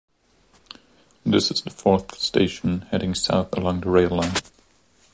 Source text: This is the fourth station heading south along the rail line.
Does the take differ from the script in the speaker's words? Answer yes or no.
no